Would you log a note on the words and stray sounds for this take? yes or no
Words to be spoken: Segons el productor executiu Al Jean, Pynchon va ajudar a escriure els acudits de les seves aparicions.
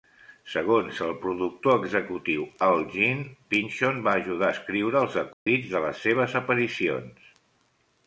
yes